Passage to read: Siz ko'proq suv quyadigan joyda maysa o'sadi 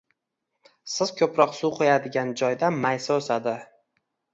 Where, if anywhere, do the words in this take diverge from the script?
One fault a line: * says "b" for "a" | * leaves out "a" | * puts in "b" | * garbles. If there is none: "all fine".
all fine